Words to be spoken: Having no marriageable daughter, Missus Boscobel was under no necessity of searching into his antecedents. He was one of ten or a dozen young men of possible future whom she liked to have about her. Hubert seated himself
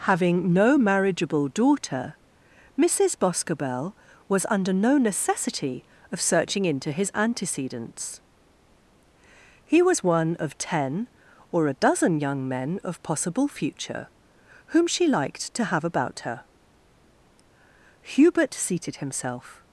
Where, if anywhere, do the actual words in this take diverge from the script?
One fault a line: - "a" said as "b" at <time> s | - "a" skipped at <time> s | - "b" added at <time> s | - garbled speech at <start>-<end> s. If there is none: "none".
none